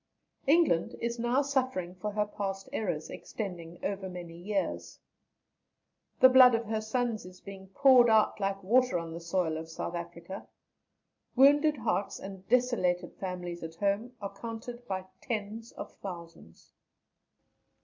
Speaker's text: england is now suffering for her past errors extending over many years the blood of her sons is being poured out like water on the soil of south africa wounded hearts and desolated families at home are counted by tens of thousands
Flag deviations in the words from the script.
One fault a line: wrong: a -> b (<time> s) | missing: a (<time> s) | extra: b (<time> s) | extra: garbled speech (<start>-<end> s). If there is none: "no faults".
no faults